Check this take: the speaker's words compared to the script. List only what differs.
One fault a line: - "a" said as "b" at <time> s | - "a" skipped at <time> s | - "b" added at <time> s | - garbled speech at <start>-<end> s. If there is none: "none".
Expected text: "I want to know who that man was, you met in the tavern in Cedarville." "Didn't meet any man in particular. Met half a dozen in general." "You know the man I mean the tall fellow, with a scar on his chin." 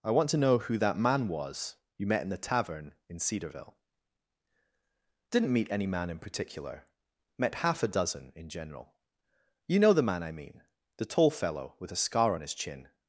none